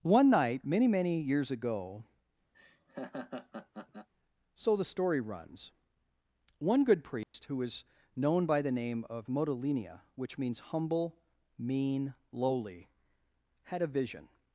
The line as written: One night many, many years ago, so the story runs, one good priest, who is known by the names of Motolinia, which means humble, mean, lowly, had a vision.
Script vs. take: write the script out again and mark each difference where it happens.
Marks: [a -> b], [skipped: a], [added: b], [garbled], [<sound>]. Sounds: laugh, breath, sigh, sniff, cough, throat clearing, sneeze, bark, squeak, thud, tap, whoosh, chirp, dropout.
One night many, many years ago, [laugh] so the story runs, one good priest, [dropout] who [is -> was] known by the [names -> name] of Motolinia, which means humble, mean, lowly, had a vision.